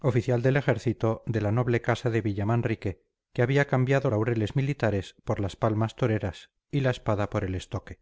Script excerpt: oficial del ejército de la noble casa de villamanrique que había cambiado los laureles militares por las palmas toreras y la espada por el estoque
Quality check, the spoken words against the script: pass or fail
fail